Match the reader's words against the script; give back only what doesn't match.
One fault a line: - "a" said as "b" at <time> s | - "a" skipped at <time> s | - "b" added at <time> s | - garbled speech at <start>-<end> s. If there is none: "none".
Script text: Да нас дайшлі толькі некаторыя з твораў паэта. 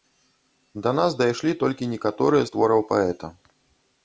none